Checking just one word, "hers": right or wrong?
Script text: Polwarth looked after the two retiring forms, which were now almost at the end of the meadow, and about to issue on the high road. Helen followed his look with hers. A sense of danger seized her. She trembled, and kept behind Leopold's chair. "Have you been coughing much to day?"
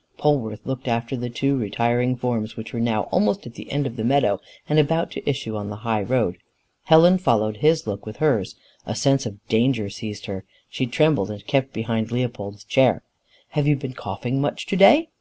right